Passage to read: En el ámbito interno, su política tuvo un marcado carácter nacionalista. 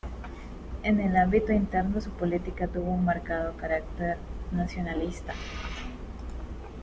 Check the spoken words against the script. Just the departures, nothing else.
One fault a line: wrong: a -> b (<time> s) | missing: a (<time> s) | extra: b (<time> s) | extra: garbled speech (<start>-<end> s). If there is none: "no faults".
no faults